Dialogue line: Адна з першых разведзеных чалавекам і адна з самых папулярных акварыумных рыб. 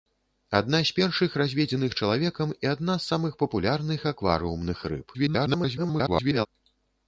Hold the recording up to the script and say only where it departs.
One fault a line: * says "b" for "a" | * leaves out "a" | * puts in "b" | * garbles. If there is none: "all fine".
* garbles